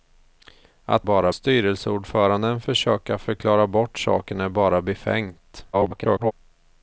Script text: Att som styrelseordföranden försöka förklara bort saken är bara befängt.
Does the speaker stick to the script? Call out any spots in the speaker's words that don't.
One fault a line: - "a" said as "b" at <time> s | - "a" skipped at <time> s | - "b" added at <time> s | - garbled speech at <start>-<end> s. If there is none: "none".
- "som" said as "bara" at 1.0 s
- garbled speech at 5.7-6.3 s